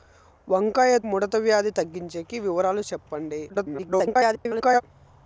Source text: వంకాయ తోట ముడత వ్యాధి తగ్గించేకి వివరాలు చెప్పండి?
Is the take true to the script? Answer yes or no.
no